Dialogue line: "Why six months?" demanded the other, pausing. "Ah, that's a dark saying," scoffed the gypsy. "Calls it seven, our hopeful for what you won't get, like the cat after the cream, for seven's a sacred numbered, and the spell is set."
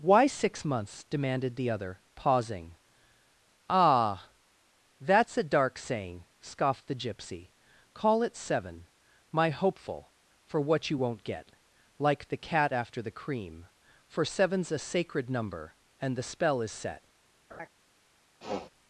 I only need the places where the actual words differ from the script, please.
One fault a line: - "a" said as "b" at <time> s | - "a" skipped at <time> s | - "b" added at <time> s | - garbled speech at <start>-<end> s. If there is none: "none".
- "Calls" said as "Call" at 7.9 s
- "our" said as "my" at 9.3 s
- "numbered" said as "number" at 15.3 s